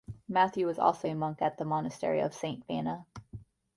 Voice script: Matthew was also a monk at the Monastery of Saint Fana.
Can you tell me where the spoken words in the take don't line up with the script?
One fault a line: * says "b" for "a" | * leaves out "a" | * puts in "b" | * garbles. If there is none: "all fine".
all fine